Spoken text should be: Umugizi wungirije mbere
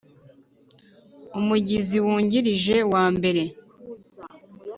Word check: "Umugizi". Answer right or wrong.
right